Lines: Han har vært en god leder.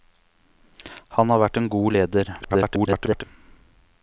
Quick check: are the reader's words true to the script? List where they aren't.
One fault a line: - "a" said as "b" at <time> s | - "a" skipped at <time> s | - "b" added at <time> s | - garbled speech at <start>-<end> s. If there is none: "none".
- garbled speech at 2.4-3.2 s